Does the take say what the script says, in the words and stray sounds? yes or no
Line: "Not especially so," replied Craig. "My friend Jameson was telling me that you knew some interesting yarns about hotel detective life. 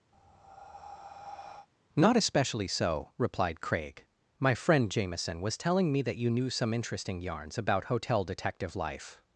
no